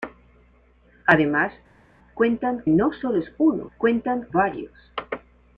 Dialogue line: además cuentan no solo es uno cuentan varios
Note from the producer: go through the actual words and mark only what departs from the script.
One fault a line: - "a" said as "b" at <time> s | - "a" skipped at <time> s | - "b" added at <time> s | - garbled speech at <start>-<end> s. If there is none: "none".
none